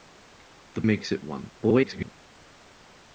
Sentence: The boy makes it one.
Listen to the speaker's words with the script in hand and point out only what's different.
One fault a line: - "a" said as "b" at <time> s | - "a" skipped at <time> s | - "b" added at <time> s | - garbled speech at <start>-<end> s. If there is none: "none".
- "boy" skipped at 0.8 s
- garbled speech at 1.6-2.1 s